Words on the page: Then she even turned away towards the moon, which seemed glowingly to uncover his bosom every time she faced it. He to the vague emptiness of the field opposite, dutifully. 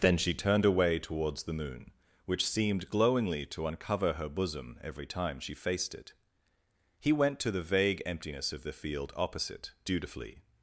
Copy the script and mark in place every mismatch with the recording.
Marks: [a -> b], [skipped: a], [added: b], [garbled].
Then she [skipped: even] turned away towards the moon, which seemed glowingly to uncover [his -> her] bosom every time she faced it. He [added: went] to the vague emptiness of the field opposite, dutifully.